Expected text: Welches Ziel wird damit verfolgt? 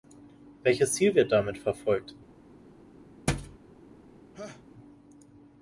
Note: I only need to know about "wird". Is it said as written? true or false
true